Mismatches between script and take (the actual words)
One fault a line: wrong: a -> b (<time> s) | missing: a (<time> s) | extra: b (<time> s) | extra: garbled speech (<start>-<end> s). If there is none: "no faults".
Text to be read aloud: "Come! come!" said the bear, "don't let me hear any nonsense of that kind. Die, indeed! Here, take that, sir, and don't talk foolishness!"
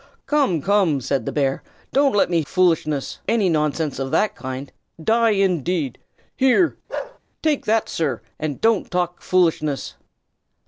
wrong: hear -> foolishness (2.4 s)